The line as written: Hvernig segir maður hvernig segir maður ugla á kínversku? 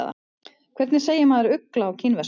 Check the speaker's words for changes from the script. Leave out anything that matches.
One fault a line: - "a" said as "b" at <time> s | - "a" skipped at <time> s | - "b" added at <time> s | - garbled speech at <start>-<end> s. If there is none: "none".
- "hvernig segir maður" skipped at 1.6 s